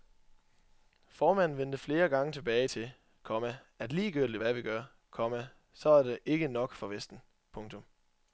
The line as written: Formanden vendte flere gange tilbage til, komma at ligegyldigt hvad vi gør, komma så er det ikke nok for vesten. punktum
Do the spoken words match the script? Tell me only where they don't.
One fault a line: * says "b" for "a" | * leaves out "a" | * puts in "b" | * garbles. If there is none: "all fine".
all fine